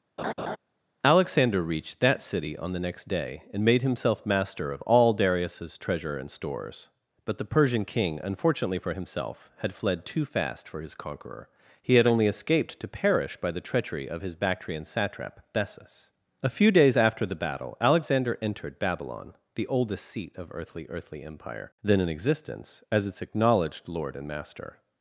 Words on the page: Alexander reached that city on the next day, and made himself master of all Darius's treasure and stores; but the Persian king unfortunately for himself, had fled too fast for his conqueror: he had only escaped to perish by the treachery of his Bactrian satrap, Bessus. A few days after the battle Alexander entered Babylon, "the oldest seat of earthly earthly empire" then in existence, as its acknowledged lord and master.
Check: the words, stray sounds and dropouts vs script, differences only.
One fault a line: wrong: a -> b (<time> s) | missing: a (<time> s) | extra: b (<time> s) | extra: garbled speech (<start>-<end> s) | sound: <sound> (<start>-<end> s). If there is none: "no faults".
sound: laugh (0.2-0.6 s)